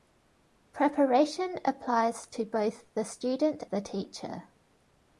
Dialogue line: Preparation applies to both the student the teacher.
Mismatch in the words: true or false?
false